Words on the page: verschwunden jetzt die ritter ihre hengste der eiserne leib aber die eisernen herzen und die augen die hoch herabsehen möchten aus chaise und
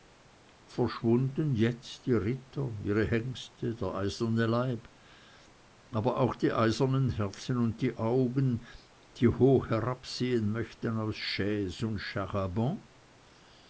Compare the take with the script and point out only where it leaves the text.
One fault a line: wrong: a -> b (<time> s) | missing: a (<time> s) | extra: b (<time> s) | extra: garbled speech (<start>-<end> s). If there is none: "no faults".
extra: auch (6.2 s)